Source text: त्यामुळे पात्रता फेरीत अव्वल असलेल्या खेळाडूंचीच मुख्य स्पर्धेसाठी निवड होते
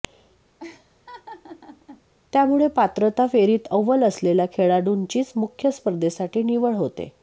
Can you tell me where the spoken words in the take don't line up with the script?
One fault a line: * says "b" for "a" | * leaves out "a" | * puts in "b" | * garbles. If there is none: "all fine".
all fine